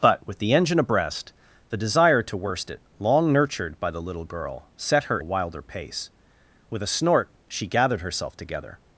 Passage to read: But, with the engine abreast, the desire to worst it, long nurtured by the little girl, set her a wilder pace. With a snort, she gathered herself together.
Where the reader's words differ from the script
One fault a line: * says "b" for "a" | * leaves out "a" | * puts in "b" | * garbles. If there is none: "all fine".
all fine